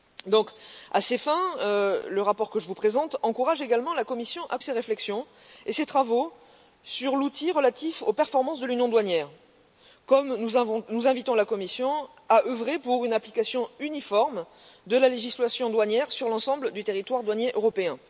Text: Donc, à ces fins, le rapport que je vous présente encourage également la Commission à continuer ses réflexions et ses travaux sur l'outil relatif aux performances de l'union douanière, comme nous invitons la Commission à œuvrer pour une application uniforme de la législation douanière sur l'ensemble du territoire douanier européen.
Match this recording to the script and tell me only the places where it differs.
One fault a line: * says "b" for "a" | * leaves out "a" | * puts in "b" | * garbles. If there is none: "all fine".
* leaves out "continuer"